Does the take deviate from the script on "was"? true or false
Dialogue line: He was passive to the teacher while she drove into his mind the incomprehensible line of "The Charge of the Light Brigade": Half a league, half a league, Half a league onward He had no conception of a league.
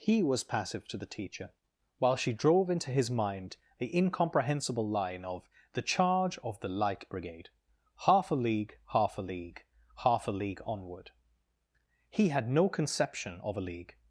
false